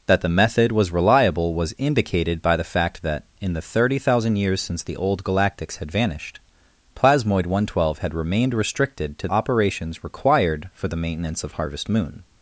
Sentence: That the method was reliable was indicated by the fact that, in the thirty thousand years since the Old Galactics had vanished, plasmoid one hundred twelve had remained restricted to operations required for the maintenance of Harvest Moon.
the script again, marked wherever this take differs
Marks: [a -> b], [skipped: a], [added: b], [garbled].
That the method was reliable was indicated by the fact that, in the thirty thousand years since the Old Galactics had vanished, plasmoid one hundred twelve had remained restricted to operations required for the maintenance of Harvest Moon.